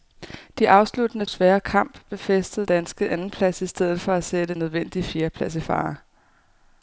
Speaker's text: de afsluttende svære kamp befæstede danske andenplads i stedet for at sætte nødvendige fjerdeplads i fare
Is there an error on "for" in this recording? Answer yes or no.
no